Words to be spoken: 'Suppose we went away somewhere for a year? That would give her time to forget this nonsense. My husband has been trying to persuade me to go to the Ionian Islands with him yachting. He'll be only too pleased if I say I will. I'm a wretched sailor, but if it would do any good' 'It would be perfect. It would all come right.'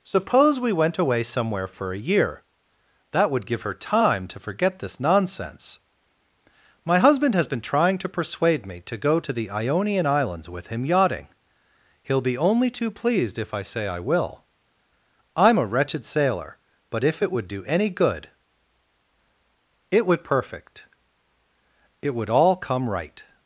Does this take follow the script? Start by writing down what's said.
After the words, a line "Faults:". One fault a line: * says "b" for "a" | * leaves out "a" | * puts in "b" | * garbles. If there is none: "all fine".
'Suppose we went away somewhere for a year? That would give her time to forget this nonsense. My husband has been trying to persuade me to go to the Ionian Islands with him yachting. He'll be only too pleased if I say I will. I'm a wretched sailor, but if it would do any good' 'It would perfect. It would all come right.'
Faults:
* leaves out "be"